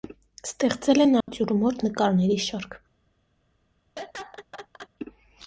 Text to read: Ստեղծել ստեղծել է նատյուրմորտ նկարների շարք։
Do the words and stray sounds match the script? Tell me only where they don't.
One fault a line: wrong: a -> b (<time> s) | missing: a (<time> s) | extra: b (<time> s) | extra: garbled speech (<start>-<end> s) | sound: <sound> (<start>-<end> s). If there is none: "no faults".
missing: ստեղծել (1.0 s)
sound: dropout (1.2-1.3 s)
sound: laugh (4.0-4.9 s)